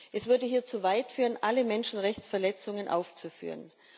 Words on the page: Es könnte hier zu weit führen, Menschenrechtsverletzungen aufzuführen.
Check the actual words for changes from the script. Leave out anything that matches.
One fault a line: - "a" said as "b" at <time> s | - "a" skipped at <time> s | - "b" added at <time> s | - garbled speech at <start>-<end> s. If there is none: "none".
- "könnte" said as "würde" at 0.3 s
- "alle" added at 1.4 s